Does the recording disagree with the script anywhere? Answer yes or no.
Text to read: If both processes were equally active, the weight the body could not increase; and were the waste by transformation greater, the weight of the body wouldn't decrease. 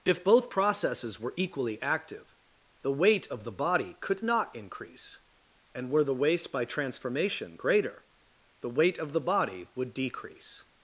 yes